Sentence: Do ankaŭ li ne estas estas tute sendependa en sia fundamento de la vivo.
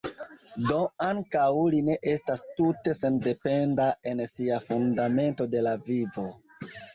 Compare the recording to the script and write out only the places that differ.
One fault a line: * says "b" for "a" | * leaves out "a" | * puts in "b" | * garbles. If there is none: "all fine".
* leaves out "estas"